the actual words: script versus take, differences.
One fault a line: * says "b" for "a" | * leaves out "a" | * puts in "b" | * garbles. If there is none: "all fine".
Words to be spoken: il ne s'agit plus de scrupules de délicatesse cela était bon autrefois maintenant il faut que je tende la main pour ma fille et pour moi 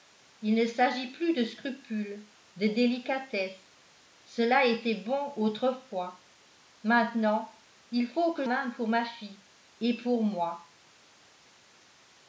* leaves out "je tende la"